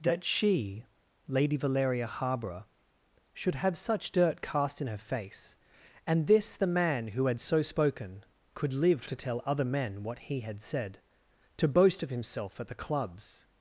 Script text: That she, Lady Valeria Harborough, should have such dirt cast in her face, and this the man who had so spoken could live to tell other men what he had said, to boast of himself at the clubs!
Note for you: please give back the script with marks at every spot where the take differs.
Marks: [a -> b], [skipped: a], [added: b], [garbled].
That she, Lady Valeria Harborough, should have such dirt cast in her face, and this the man who had so spoken could live to tell other men what he had said, to boast of himself at the clubs!